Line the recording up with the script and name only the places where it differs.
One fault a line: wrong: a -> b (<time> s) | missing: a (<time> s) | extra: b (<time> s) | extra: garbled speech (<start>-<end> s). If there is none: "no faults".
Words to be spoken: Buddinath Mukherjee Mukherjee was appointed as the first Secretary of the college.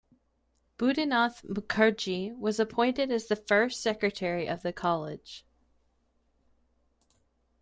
missing: Mukherjee (2.4 s)